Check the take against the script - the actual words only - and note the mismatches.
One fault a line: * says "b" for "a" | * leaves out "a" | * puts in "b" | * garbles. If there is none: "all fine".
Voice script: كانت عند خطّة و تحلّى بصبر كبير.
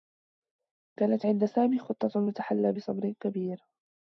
* puts in "سامي"